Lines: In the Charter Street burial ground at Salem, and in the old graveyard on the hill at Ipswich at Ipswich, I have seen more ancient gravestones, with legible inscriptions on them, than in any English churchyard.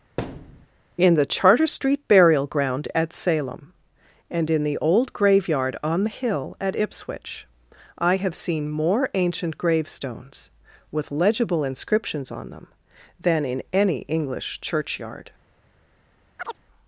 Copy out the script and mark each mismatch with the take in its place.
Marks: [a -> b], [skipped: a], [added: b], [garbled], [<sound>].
[thud] In the Charter Street burial ground at Salem, and in the old graveyard on the hill at Ipswich [skipped: at Ipswich,] I have seen more ancient gravestones, with legible inscriptions on them, than in any English churchyard. [chirp]